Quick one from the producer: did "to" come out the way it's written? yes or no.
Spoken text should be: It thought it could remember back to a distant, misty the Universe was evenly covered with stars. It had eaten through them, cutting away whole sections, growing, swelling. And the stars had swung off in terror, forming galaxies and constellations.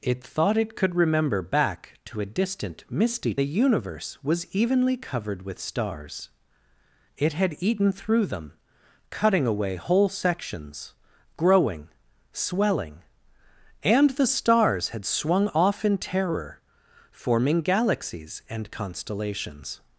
yes